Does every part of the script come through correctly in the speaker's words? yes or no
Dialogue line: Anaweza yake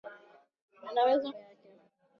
yes